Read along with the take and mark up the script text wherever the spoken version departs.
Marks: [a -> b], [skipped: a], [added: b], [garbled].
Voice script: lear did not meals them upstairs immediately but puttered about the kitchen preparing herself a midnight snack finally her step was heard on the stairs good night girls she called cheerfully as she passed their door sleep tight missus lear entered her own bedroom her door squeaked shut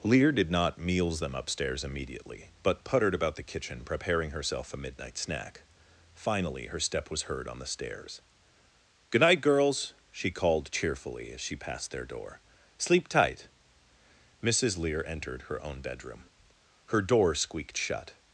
lear did not meals them upstairs immediately but puttered about the kitchen preparing herself a midnight snack finally her step was heard on the stairs good night girls she called cheerfully as she passed their door sleep tight missus lear entered her own bedroom her door squeaked shut